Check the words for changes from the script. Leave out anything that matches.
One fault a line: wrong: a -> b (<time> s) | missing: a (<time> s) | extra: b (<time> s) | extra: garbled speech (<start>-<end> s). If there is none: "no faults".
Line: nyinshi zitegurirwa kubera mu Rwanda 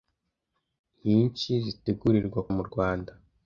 missing: kubera (2.4 s)